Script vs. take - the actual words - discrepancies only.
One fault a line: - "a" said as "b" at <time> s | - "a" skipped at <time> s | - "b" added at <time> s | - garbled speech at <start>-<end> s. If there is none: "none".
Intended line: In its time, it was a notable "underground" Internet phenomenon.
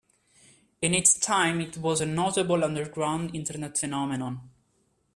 none